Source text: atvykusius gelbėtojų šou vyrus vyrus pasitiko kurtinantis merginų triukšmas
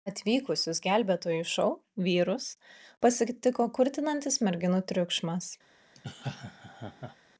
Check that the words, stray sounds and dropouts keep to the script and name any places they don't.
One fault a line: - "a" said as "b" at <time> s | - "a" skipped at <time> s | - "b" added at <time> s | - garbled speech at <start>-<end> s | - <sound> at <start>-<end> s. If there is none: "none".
- "vyrus" skipped at 2.5 s
- laugh at 5.9-7.2 s